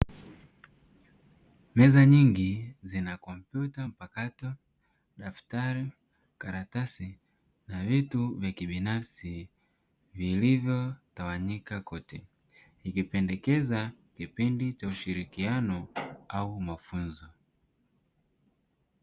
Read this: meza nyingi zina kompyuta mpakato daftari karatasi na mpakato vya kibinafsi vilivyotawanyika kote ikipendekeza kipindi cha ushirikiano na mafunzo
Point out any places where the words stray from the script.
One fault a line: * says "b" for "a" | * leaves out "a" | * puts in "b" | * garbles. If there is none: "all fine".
* says "vitu" for "mpakato"
* says "au" for "na"